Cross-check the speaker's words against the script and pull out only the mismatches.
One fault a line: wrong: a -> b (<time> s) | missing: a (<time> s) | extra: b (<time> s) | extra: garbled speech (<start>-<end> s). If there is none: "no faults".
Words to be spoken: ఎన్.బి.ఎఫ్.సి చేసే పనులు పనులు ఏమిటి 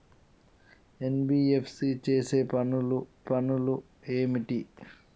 no faults